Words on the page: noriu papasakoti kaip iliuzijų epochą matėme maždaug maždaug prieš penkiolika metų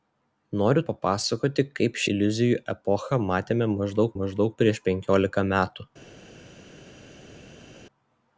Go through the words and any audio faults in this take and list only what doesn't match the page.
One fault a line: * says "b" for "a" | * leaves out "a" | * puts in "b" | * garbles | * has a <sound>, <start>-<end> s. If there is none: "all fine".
all fine